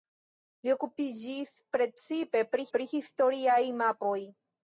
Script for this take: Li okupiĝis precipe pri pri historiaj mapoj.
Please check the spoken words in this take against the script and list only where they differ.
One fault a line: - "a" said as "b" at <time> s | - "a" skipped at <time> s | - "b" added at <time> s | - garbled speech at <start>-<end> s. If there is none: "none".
none